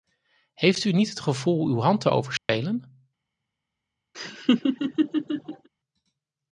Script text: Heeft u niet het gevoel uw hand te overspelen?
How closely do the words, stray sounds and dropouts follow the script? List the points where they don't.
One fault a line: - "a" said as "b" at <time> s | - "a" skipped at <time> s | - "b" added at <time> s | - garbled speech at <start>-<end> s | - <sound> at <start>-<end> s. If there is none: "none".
- dropout at 2.4-2.5 s
- laugh at 4.1-5.7 s